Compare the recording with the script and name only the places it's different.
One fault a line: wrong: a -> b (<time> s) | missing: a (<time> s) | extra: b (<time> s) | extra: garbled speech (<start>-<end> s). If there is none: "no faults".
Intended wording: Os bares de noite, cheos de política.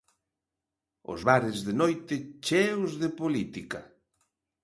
no faults